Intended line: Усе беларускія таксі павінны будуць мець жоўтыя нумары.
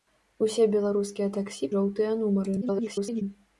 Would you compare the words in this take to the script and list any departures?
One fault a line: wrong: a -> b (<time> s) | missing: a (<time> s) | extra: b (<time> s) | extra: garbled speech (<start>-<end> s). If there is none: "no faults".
missing: павінны будуць мець (1.7 s)
extra: garbled speech (2.6-3.2 s)